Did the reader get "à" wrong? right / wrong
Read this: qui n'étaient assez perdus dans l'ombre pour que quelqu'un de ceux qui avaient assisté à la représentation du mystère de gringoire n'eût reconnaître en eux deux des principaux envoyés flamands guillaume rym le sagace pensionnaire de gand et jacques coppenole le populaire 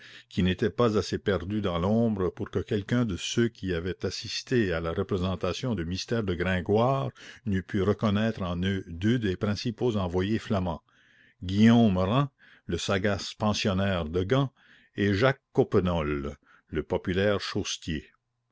right